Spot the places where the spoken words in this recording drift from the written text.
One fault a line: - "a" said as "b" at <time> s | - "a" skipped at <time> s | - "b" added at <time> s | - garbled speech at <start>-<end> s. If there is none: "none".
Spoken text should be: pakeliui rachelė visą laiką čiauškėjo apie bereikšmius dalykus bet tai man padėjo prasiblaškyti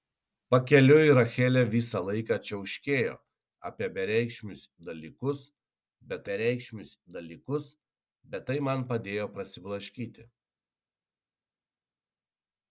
- "bereikšmius dalykus bet" added at 6.3 s